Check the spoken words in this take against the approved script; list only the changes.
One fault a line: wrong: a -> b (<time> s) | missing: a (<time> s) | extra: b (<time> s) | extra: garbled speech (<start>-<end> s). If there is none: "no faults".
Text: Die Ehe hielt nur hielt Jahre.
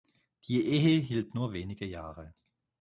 wrong: hielt -> wenige (1.5 s)